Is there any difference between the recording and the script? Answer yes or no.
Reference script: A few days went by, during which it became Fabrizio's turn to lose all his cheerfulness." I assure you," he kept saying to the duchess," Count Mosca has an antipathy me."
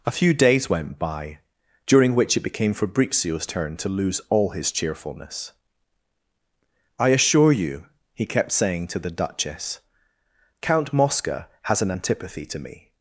yes